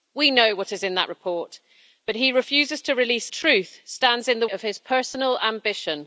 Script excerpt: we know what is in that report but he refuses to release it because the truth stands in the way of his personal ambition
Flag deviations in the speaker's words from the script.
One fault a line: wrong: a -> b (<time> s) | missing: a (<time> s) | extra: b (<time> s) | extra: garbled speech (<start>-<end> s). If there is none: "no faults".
missing: it because the (3.3 s)
missing: way (4.5 s)